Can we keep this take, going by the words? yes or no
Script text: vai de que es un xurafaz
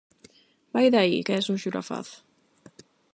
no